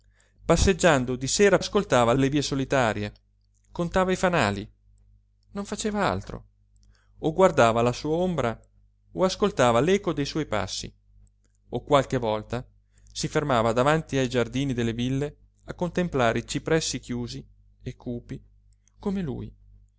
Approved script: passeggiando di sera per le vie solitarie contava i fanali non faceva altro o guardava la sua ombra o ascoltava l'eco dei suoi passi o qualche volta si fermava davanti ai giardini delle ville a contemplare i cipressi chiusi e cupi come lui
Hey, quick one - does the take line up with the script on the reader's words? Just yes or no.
no